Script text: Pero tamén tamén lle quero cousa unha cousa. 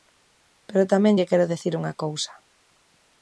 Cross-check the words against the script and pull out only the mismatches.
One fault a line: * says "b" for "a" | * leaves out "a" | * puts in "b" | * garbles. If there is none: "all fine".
* leaves out "tamén"
* says "dicir" for "cousa"